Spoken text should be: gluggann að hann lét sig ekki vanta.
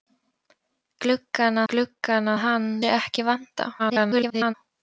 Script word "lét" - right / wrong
wrong